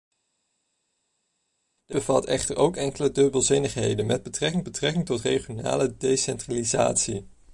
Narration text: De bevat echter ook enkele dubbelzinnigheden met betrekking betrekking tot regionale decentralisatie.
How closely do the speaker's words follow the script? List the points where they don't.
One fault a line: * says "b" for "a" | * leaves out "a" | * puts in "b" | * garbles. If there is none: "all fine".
all fine